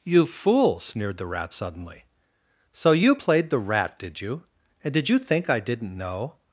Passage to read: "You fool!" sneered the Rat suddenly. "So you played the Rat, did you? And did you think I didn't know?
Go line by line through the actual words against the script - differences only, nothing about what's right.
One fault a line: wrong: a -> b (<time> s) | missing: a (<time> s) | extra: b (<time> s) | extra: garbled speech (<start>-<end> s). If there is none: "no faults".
no faults